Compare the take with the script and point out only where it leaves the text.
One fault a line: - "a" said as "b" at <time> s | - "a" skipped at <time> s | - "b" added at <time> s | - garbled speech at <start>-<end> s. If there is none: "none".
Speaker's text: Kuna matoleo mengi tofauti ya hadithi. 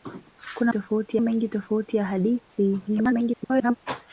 - "matoleo" said as "tofauti" at 0.7 s
- garbled speech at 2.9-3.8 s